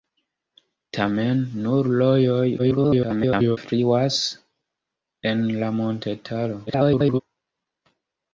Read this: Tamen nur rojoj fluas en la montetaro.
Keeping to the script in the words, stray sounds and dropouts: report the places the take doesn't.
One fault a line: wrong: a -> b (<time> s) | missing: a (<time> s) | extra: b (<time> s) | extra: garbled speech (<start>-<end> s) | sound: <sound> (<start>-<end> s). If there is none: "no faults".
extra: garbled speech (2.6-3.6 s)
extra: garbled speech (6.7-7.2 s)